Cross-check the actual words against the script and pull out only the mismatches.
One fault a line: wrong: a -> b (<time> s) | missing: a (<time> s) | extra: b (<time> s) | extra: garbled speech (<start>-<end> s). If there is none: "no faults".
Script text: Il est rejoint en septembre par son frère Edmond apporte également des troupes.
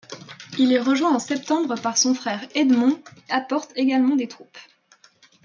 no faults